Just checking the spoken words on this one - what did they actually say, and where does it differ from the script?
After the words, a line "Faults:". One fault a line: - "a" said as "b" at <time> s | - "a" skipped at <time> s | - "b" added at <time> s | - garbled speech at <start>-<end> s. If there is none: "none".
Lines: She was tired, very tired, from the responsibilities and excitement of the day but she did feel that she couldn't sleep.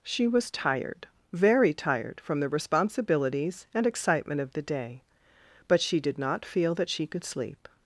She was tired, very tired, from the responsibilities and excitement of the day but she did not feel that she could sleep.
Faults:
- "not" added at 6.2 s
- "couldn't" said as "could" at 7.0 s